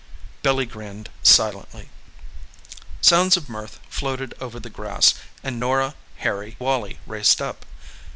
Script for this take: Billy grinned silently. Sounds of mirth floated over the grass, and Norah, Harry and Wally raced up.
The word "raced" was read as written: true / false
true